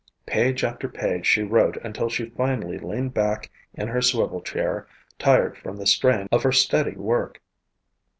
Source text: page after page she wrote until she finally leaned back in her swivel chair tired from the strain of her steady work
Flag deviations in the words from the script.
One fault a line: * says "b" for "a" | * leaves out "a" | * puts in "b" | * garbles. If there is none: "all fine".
all fine